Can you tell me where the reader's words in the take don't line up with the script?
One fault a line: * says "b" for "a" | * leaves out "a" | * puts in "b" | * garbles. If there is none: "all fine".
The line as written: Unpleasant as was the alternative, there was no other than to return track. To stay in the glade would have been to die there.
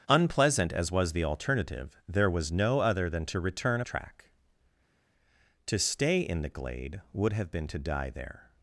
all fine